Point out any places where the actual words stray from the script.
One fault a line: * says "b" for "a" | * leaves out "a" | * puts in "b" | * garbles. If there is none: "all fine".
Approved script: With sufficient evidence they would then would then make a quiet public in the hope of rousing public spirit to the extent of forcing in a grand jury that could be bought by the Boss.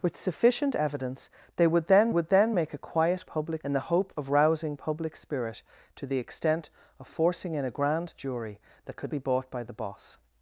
all fine